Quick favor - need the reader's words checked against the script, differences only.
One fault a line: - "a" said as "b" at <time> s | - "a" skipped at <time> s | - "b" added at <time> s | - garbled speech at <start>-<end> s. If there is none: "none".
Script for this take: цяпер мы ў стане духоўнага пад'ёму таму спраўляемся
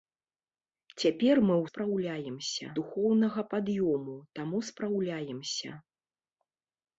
- "стане" said as "спраўляемся" at 1.7 s